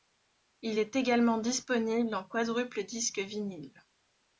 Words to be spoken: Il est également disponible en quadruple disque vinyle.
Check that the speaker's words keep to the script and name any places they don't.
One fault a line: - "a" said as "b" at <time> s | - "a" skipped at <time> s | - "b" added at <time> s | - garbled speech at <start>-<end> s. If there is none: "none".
none